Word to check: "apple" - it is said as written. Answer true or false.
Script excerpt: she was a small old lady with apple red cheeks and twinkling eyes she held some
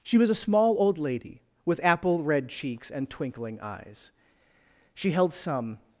true